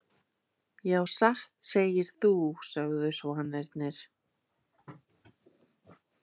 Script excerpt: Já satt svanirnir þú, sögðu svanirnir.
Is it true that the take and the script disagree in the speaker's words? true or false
true